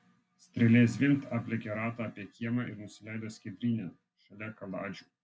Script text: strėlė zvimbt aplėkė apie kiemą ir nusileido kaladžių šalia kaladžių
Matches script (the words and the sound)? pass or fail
fail